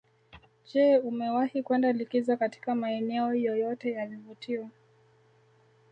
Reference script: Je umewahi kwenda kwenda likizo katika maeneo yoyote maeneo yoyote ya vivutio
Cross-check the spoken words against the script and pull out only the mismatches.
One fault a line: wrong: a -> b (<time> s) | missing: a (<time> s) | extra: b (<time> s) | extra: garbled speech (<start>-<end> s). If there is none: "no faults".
missing: kwenda (1.9 s)
missing: maeneo yoyote (3.9 s)